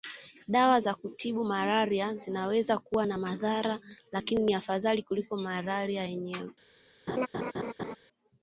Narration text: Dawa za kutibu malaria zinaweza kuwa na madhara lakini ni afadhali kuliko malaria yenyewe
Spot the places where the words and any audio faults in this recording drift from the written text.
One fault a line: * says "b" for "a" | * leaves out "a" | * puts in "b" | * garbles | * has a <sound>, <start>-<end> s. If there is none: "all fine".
* has a laugh, 7.1-8.0 s